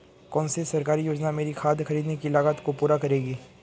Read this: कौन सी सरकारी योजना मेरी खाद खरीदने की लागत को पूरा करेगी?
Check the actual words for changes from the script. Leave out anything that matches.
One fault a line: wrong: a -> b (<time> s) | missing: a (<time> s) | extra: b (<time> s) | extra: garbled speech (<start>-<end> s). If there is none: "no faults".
no faults